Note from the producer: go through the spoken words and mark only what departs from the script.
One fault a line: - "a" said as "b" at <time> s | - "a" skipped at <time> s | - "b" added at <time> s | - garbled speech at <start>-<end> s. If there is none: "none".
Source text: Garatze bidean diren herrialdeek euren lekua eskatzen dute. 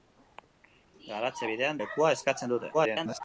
- "diren herrialdeek euren" skipped at 1.8 s
- garbled speech at 2.7-3.2 s